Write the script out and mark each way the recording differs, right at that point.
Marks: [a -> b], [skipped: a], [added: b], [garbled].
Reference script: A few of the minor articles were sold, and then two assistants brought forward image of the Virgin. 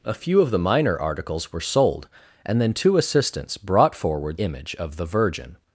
A few of the minor articles were sold, and then two assistants brought forward image of the Virgin.